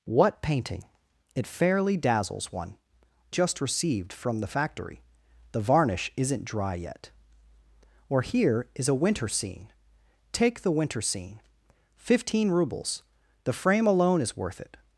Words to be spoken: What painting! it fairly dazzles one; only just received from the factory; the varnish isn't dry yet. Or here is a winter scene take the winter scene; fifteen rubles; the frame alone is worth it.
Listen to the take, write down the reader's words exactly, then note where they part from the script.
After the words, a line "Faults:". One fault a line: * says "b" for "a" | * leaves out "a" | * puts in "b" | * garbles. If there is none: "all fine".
What painting! it fairly dazzles one; just received from the factory; the varnish isn't dry yet. Or here is a winter scene take the winter scene; fifteen rubles; the frame alone is worth it.
Faults:
* leaves out "only"